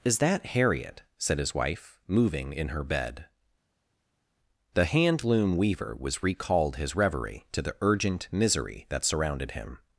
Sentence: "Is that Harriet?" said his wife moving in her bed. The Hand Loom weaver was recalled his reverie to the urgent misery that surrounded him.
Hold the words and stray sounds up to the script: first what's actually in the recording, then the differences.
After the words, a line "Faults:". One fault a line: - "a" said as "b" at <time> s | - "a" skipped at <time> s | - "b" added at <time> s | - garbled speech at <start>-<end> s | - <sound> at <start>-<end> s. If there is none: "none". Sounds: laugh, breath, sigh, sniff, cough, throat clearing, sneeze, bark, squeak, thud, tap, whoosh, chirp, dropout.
"Is that Harriet?" said his wife moving in her bed. The Hand Loom weaver was recalled his reverie to the urgent misery that surrounded him.
Faults:
none